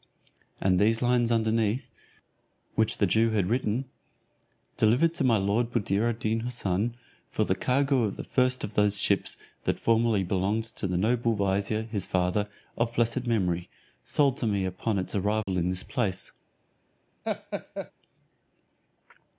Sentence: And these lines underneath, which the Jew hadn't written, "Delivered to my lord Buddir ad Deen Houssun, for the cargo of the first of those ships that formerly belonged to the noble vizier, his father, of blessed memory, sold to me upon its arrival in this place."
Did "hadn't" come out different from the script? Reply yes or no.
yes